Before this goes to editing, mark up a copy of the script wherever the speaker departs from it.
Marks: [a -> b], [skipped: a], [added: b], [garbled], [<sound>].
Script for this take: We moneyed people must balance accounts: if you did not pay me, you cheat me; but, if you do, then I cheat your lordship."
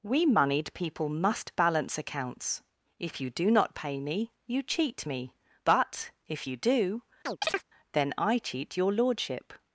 We moneyed people must balance accounts: if you [did -> do] not pay me, you cheat me; but, if you do, [chirp] then I cheat your lordship."